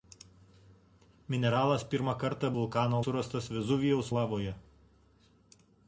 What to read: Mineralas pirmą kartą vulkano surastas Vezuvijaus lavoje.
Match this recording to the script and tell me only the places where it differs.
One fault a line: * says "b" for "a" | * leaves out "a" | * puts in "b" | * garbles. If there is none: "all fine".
all fine